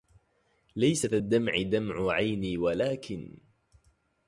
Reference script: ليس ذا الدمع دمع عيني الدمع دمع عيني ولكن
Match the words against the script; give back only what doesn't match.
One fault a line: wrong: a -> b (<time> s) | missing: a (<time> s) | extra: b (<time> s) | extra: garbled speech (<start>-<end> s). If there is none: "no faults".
missing: الدمع دمع عيني (2.6 s)